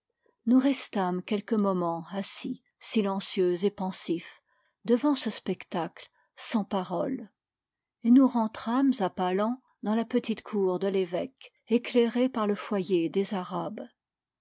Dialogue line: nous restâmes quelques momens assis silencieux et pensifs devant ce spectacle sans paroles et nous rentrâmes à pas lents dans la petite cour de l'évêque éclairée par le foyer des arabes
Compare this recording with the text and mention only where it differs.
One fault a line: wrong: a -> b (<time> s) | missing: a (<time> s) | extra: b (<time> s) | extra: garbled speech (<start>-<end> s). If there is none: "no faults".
no faults